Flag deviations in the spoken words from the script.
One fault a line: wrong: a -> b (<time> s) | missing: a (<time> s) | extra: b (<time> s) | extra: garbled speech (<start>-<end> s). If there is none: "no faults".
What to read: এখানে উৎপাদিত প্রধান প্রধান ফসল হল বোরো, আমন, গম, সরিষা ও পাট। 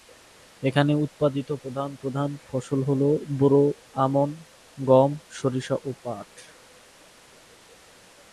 no faults